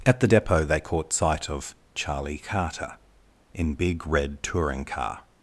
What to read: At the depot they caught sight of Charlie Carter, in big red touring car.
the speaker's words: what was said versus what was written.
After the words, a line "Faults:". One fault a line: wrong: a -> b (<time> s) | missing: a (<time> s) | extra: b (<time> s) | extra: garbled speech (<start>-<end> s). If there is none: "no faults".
At the depot they caught sight of Charlie Carter, in big red touring car.
Faults:
no faults